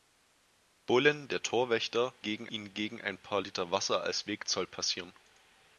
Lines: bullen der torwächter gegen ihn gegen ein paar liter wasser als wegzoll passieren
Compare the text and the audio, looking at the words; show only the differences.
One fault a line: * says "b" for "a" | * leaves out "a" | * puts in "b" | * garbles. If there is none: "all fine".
all fine